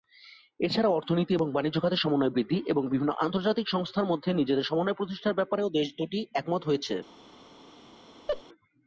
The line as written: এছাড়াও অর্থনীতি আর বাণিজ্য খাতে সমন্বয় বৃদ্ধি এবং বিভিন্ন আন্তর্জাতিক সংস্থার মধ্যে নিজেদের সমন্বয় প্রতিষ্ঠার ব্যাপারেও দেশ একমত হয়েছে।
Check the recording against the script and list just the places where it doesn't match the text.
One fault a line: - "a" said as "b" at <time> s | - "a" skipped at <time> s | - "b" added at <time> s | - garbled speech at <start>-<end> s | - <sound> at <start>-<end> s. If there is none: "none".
- "আর" said as "এবং" at 1.4 s
- "দুটি" added at 6.0 s
- laugh at 8.3-8.4 s